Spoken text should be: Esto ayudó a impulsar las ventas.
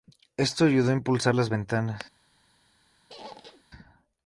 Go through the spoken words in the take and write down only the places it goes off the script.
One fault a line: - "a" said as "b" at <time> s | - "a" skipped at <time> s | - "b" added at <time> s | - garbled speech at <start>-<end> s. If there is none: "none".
none